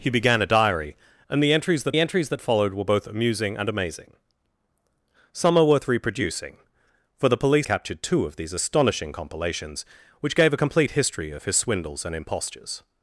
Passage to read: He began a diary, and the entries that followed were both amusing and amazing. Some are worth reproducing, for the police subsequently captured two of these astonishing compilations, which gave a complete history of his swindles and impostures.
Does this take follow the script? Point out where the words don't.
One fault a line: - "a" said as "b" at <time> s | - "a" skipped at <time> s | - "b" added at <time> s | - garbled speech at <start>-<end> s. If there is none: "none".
- "the entries that" added at 1.9 s
- "subsequently" skipped at 7.7 s